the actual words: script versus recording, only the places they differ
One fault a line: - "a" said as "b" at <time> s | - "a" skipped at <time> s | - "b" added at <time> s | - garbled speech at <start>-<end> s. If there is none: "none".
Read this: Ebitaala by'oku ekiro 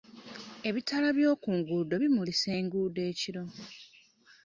- "nguudo bimulisa enguudo" added at 1.6 s